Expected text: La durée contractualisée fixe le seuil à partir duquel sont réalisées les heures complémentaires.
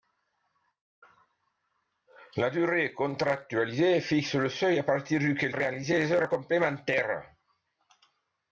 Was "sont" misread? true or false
true